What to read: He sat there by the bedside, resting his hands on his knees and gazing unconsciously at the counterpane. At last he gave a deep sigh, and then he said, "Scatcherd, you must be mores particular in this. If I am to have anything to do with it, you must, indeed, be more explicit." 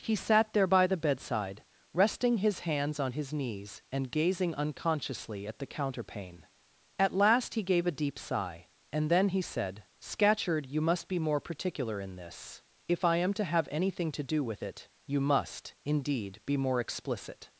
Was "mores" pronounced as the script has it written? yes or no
no